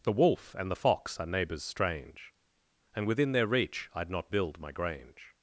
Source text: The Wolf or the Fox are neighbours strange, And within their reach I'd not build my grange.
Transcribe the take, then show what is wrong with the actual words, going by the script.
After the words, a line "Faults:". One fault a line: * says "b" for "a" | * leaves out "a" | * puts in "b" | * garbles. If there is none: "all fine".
The Wolf and the Fox are neighbours strange, And within their reach I'd not build my grange.
Faults:
* says "and" for "or"